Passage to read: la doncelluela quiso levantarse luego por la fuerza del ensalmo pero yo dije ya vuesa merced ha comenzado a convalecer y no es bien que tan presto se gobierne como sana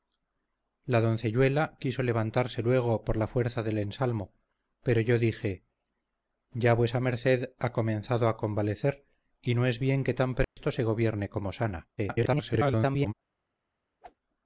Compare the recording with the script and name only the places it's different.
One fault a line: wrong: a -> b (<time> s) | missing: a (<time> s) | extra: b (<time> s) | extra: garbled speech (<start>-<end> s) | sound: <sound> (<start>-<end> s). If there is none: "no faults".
sound: dropout (10.4-10.6 s)
extra: garbled speech (12.0-13.1 s)
sound: whoosh (14.0-14.2 s)